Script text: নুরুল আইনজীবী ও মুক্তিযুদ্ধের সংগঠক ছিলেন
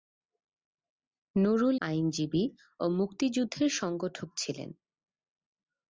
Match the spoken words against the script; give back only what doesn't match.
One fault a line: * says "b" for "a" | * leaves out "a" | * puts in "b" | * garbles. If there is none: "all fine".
all fine